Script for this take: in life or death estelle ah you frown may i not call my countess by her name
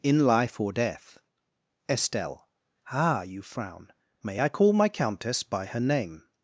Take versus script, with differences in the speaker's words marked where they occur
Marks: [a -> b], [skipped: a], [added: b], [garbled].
in life or death estelle ah you frown may i [skipped: not] call my countess by her name